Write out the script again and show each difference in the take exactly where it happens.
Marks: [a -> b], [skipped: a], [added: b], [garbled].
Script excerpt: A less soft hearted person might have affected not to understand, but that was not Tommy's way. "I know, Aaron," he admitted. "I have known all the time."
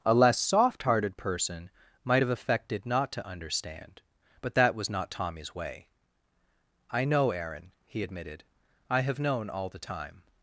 A less soft hearted person might have affected not to understand, but that was not Tommy's way. "I know, Aaron," he admitted. "I have known all the time."